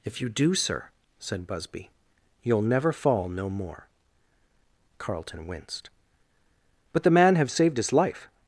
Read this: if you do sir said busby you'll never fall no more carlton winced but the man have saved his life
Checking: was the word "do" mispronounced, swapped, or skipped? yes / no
no